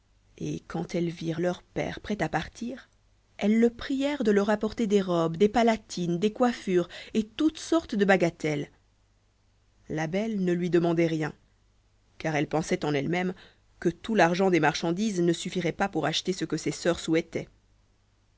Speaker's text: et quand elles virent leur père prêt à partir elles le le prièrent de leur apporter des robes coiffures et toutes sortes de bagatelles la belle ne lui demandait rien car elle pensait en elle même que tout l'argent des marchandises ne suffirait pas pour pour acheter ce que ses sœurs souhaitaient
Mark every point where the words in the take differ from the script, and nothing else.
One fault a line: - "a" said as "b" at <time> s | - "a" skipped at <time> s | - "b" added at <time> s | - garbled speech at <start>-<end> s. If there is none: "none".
- "le" skipped at 3.7 s
- "des palatines des" added at 5.4 s
- "pour" skipped at 16.1 s